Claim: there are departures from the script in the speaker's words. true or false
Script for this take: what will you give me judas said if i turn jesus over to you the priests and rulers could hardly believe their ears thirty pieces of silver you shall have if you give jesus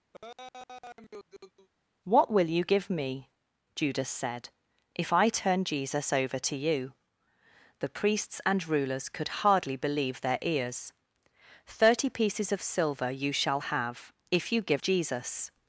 false